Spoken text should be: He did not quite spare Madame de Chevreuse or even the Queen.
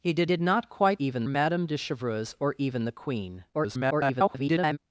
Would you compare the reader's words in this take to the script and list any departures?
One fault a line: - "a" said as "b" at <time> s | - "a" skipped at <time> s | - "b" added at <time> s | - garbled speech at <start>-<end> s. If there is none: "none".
- "did" added at 0.2 s
- "spare" said as "even" at 1.0 s
- garbled speech at 3.5-4.8 s